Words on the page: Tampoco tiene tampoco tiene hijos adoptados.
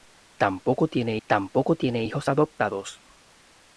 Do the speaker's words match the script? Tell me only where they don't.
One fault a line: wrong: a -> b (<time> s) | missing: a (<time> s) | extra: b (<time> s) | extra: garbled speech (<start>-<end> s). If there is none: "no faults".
no faults